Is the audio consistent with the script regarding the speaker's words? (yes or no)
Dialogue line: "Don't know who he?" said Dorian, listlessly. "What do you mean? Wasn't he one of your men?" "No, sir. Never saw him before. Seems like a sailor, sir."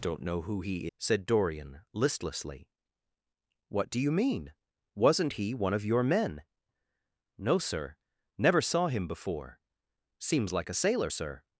yes